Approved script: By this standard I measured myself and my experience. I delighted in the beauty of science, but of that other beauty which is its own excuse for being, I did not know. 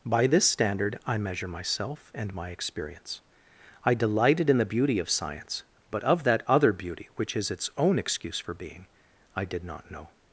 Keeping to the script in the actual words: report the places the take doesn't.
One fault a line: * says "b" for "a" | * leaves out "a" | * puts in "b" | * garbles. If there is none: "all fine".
* says "measure" for "measured"